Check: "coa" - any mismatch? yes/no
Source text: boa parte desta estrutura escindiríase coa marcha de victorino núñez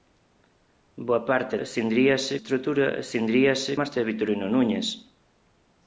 yes